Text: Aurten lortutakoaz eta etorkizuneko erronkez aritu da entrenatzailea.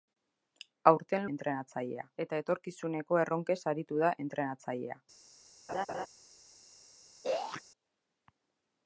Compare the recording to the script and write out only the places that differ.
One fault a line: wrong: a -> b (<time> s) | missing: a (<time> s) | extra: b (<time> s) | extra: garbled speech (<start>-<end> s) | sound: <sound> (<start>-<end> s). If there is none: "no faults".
wrong: lortutakoaz -> entrenatzailea (1.4 s)
sound: laugh (5.7-6.1 s)
sound: throat clearing (7.2-7.6 s)